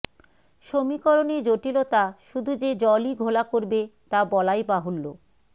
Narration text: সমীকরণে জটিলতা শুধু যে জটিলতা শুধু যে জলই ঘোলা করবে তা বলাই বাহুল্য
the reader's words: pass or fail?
fail